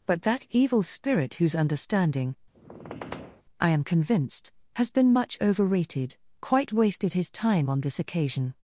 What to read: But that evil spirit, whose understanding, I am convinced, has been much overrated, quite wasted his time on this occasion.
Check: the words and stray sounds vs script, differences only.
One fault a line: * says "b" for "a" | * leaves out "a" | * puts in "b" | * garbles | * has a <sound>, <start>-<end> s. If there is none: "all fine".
* has a squeak, 2.5-3.4 s